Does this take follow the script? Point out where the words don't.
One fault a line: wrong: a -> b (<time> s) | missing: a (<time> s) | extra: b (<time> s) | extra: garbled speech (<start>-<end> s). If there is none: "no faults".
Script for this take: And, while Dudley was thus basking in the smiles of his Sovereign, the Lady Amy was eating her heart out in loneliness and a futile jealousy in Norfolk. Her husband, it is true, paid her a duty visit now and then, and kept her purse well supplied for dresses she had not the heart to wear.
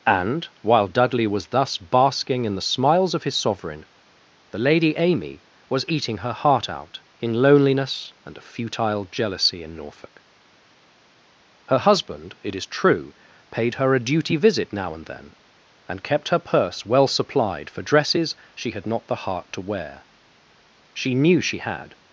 extra: She knew she had (20.9 s)